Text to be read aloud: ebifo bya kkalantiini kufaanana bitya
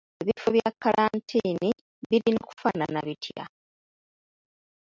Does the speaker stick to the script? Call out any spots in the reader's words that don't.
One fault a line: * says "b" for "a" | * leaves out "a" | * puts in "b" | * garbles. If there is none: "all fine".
* puts in "birina"